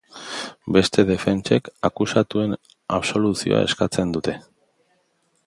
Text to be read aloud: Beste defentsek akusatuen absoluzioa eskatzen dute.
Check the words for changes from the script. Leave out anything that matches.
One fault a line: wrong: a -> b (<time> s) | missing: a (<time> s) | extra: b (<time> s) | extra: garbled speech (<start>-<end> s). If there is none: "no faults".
no faults